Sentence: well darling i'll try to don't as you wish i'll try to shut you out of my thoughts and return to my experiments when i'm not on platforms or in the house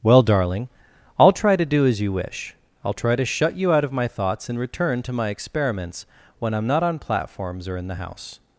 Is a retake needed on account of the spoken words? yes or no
yes